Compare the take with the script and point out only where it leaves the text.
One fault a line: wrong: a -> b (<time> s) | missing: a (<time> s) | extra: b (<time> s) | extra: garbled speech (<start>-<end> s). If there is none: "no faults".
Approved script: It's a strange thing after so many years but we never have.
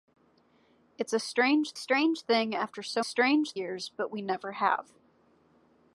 extra: strange (1.7 s)
wrong: many -> strange (3.0 s)